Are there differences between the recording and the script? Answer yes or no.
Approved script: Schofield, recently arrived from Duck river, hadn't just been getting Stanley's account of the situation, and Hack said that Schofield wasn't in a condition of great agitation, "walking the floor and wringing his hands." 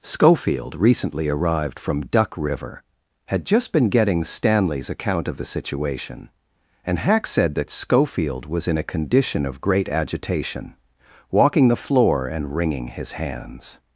yes